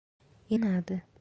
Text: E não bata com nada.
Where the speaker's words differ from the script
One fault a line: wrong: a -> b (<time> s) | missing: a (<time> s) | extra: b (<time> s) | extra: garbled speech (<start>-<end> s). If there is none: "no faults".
missing: não bata com (0.6 s)